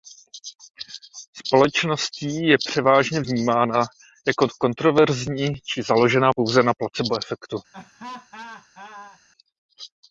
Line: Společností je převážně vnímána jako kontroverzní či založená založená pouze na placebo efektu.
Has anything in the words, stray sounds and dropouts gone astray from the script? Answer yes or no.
yes